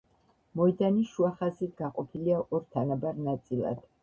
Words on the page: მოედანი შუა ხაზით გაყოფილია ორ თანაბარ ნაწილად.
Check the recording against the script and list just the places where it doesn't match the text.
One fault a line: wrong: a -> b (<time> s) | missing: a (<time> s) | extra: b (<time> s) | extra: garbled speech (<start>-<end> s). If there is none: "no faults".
no faults